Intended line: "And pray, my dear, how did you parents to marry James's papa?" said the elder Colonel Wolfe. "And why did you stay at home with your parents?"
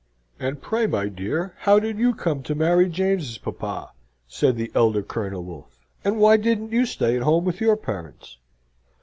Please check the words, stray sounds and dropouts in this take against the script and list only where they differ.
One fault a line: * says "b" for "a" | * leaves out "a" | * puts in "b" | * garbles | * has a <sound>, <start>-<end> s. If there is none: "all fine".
* says "come" for "parents"
* says "didn't" for "did"